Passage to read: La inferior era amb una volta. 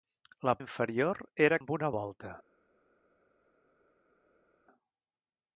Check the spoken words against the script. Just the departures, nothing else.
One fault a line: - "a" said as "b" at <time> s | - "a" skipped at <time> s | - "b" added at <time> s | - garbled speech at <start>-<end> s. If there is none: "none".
none